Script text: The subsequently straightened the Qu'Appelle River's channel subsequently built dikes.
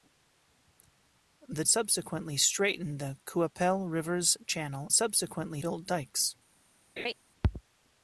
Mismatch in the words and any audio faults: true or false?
true